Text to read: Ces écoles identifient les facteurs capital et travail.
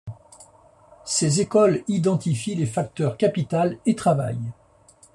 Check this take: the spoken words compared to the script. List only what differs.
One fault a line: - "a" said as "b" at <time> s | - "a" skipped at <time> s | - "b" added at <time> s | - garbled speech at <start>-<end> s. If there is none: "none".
none